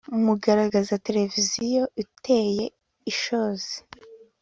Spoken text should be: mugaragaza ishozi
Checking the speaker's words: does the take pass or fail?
fail